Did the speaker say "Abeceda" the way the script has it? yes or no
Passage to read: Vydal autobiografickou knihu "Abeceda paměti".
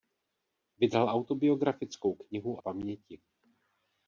no